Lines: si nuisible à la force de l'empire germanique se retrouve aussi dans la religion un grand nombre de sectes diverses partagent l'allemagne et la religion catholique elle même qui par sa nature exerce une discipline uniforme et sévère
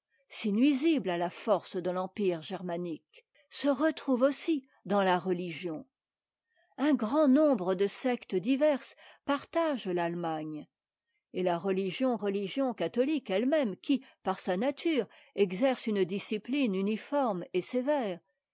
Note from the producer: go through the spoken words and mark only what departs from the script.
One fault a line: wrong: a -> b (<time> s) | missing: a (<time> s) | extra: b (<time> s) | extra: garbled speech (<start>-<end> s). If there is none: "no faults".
extra: religion (12.2 s)